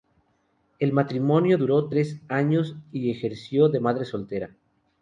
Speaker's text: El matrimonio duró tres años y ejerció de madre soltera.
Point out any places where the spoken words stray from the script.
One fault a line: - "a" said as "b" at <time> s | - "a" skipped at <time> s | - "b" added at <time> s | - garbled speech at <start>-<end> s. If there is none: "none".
none